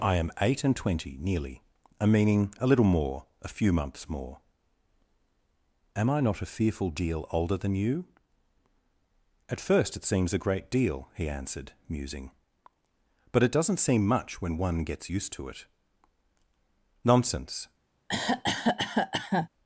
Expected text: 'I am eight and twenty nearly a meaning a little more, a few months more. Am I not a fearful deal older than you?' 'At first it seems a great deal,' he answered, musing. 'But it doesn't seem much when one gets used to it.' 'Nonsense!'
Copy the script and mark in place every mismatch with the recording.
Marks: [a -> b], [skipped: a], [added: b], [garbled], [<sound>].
'I am eight and twenty nearly a meaning a little more, a few months more. Am I not a fearful deal older than you?' 'At first it seems a great deal,' he answered, musing. 'But it doesn't seem much when one gets used to it.' 'Nonsense!' [cough]